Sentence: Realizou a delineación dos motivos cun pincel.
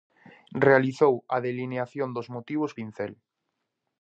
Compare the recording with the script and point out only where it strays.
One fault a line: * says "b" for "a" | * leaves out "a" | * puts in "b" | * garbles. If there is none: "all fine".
* leaves out "cun"